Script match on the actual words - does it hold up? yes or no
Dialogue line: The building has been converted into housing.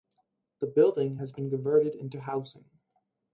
yes